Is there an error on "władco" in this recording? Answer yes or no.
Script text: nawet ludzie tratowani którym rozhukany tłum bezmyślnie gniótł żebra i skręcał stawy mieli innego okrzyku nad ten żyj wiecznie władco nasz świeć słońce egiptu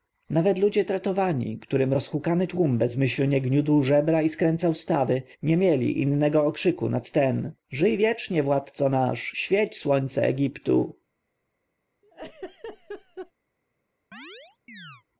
no